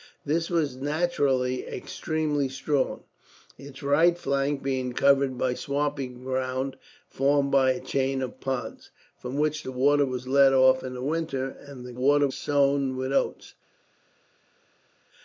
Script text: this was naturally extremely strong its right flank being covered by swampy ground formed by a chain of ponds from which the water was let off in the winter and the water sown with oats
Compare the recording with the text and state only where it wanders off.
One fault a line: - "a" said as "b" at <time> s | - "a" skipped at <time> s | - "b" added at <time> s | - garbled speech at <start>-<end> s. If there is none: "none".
none